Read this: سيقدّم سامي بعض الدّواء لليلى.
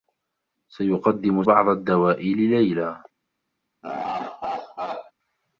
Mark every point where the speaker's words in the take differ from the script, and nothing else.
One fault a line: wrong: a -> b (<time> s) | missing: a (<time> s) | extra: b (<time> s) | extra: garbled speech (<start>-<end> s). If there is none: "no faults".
missing: سامي (1.4 s)